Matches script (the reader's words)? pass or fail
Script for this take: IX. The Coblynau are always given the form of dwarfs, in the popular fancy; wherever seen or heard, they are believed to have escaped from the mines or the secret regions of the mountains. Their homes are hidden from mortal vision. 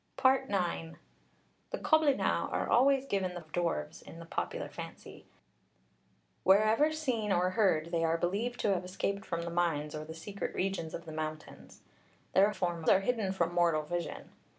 fail